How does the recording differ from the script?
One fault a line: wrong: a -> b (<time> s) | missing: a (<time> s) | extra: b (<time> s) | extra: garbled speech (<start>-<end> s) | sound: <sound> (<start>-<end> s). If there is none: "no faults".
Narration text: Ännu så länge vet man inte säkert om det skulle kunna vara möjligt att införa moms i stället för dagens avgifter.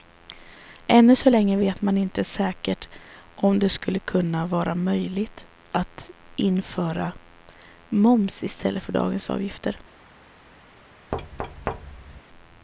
sound: thud (11.1-12.2 s)